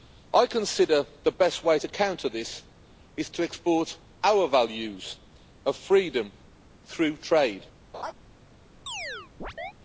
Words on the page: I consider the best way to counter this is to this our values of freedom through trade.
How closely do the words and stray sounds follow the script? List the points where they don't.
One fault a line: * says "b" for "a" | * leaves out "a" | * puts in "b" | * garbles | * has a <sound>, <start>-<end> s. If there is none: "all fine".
* says "export" for "this"
* has a laugh, 7.9-8.1 s
* has a chirp, 8.9-9.7 s